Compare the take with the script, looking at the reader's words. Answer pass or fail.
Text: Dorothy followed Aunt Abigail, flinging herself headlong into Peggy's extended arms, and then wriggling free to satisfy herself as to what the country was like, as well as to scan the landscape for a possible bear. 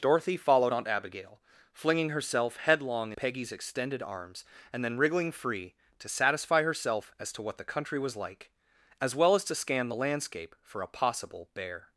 fail